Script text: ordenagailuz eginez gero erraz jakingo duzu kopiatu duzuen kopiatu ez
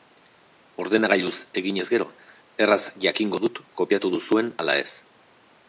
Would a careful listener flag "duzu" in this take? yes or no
yes